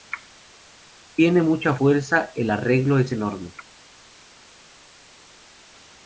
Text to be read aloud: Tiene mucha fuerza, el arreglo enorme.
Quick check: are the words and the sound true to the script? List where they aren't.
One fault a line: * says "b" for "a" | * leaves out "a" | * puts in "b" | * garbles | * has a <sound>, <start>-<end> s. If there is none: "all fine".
* puts in "es"